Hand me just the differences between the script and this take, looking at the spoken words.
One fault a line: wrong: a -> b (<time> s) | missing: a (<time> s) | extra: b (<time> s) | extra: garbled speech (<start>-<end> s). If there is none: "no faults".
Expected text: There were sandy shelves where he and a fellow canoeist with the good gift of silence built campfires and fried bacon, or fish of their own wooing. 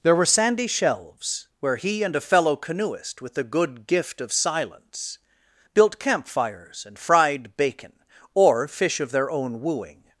no faults